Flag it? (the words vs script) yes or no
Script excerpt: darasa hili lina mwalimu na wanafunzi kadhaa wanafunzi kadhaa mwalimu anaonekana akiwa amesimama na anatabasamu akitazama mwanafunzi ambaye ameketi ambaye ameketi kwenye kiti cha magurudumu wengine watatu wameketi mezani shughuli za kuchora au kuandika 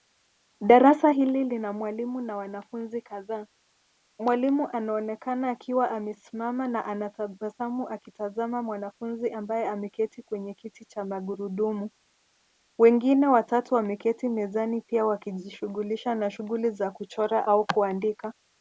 yes